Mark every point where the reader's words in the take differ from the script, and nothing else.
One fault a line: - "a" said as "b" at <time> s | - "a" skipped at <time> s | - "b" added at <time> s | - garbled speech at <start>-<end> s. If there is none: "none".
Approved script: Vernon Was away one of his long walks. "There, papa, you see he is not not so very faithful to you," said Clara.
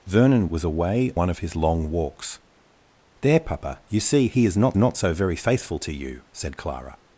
none